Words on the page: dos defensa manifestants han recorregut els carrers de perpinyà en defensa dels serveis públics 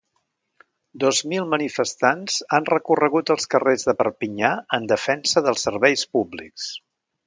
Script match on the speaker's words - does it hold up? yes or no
no